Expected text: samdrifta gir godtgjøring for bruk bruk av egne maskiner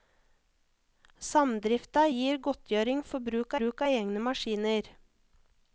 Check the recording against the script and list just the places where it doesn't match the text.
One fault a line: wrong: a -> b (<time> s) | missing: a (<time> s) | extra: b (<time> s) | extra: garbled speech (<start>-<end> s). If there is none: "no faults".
no faults